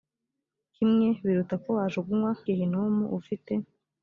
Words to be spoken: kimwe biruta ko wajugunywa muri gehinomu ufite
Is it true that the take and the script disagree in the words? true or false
true